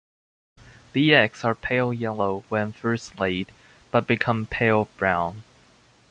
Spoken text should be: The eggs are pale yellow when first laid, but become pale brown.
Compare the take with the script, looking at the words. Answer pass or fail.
pass